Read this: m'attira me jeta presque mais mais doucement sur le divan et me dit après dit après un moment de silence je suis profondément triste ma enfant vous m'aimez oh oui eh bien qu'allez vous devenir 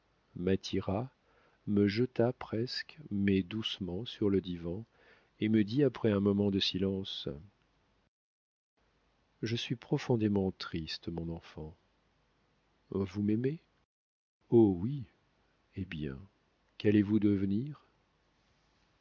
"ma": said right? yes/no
no